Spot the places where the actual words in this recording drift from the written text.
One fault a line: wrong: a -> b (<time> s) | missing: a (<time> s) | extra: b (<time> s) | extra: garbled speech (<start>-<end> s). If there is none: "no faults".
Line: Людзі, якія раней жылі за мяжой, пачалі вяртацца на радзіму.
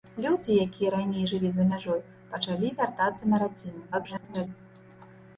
extra: garbled speech (3.9-4.5 s)